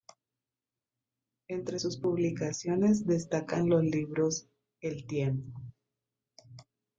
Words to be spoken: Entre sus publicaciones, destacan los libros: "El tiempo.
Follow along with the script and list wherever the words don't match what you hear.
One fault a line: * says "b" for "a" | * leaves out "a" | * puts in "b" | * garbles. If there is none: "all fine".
all fine